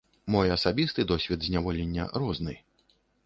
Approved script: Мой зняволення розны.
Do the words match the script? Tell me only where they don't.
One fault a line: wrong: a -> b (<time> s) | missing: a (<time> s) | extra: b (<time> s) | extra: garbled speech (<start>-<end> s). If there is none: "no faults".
extra: асабісты досвед (0.5 s)